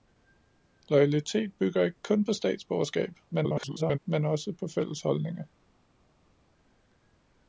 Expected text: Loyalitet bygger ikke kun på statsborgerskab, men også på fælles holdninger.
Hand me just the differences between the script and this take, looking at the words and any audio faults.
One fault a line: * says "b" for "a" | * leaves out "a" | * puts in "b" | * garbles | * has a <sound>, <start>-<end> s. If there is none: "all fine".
* garbles